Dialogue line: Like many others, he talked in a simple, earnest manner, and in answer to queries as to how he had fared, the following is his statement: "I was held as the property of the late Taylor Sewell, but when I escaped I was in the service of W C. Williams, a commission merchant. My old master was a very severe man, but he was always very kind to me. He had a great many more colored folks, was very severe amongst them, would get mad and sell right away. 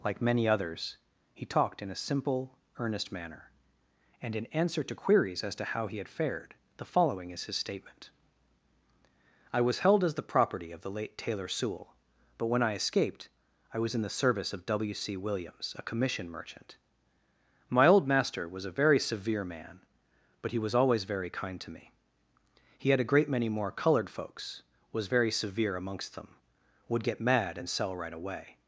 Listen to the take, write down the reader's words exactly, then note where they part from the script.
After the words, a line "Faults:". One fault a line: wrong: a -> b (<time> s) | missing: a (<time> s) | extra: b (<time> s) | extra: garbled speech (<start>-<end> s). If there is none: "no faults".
Like many others, he talked in a simple, earnest manner, and in answer to queries as to how he had fared, the following is his statement: "I was held as the property of the late Taylor Sewell, but when I escaped I was in the service of W C. Williams, a commission merchant. My old master was a very severe man, but he was always very kind to me. He had a great many more colored folks, was very severe amongst them, would get mad and sell right away.
Faults:
no faults